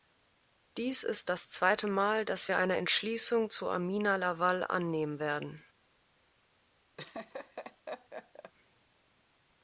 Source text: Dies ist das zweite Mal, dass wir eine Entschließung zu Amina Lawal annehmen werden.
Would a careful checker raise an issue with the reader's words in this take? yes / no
no